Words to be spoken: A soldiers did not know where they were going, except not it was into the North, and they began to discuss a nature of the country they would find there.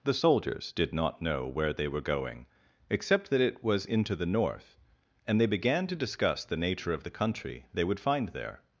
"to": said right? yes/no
yes